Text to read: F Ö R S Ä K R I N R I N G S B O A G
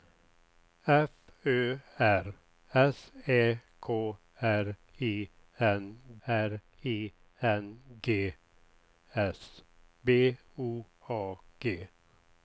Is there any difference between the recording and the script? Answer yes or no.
no